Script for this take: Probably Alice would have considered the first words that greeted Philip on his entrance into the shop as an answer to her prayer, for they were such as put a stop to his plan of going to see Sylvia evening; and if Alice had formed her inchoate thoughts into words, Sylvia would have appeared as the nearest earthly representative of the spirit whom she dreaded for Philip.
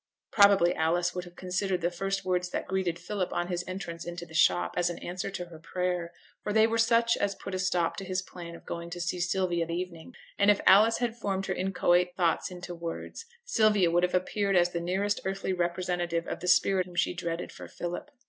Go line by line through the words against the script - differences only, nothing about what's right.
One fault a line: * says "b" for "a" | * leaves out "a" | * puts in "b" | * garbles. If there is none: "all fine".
all fine